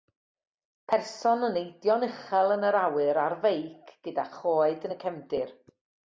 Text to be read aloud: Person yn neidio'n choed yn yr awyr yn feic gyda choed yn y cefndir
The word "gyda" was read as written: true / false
true